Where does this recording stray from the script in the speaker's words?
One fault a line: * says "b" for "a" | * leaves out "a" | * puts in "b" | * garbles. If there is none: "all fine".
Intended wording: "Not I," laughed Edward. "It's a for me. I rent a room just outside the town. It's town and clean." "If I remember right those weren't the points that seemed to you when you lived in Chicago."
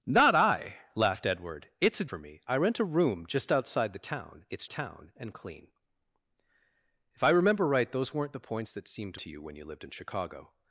all fine